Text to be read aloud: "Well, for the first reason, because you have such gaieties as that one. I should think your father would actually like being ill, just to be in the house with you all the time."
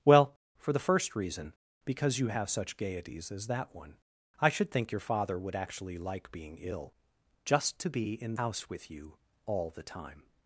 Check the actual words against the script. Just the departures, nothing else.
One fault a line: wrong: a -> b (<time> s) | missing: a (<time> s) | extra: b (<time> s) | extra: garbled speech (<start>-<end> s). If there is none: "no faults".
missing: the (8.3 s)